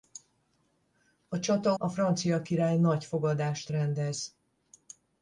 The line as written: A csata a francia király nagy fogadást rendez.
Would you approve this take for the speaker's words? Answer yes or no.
yes